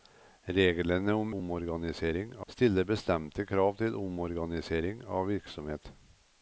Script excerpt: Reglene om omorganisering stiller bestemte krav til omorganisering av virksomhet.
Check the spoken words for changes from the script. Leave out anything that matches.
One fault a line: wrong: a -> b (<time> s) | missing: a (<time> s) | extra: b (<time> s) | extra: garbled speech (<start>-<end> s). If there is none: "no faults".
no faults